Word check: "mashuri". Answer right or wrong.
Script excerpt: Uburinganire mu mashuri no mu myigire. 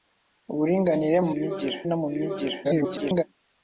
wrong